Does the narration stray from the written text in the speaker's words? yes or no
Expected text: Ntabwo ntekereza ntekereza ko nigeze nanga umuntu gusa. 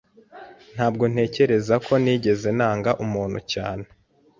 yes